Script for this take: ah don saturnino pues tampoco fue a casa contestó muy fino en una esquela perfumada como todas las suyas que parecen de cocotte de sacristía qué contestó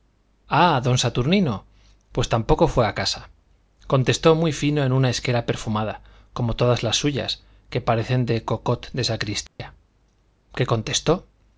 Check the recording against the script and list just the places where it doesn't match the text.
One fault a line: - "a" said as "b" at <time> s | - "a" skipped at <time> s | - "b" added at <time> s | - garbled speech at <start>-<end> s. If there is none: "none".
none